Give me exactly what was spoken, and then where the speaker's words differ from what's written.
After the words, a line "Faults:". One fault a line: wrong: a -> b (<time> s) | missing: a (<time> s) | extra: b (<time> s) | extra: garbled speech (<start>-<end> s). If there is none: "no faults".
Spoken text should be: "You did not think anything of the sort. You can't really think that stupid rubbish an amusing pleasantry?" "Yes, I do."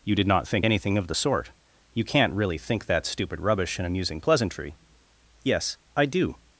"You did not think anything of the sort. You can't really think that stupid rubbish an amusing pleasantry?" "Yes, I do."
Faults:
no faults